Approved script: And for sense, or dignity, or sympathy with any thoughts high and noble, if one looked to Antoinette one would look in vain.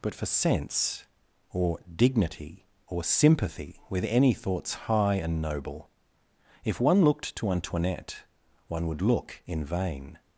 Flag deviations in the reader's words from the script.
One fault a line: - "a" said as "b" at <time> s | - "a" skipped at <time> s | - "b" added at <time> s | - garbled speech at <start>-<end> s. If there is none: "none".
- "And" said as "But" at 0.0 s